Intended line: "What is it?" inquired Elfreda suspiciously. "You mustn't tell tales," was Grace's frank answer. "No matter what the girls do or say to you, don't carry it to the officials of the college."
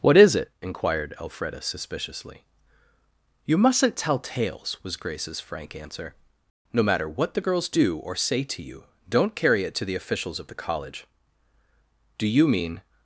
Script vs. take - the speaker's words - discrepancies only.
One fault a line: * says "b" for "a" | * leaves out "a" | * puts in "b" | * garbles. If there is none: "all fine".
* puts in "Do you mean"